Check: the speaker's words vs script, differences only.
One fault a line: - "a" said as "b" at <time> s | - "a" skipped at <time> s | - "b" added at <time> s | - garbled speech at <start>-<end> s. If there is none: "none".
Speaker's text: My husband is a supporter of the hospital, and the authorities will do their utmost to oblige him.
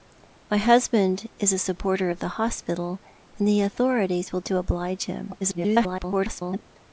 - "do their utmost" skipped at 4.4 s
- garbled speech at 5.4-6.6 s